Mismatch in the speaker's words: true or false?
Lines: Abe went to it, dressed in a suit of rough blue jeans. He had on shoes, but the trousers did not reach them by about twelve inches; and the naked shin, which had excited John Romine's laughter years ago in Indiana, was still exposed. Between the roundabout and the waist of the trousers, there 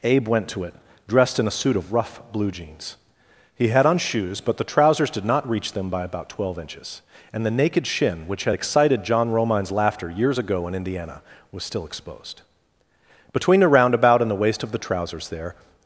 false